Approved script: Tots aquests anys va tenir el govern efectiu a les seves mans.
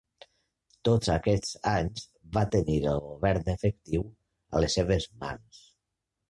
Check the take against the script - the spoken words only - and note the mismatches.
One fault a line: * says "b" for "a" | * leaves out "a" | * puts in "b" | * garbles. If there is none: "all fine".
all fine